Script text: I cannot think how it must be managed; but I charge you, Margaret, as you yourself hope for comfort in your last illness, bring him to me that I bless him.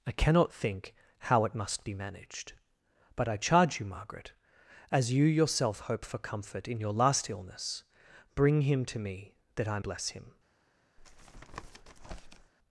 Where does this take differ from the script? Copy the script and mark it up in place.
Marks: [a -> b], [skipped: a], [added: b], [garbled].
I cannot think how it must be managed; but I charge you, Margaret, as you yourself hope for comfort in your last illness, bring him to me that I bless him.